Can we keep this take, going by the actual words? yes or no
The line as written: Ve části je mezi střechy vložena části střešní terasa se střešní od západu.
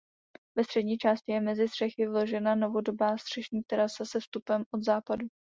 no